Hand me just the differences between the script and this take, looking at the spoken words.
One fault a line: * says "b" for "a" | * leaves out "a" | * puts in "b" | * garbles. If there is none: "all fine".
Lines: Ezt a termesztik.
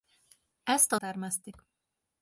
all fine